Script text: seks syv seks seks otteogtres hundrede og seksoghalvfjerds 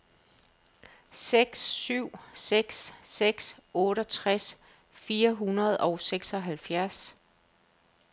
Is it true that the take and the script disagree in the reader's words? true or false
true